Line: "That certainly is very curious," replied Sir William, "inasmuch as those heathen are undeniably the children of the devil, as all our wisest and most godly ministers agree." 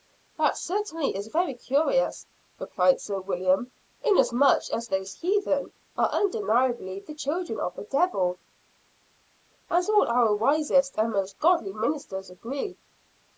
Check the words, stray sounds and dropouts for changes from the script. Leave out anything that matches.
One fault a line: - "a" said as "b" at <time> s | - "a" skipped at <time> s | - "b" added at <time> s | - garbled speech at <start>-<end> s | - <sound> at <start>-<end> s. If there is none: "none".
none